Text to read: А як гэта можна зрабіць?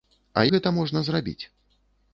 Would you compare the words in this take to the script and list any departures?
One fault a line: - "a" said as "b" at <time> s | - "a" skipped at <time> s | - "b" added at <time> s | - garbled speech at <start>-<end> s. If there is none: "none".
- "як" skipped at 0.5 s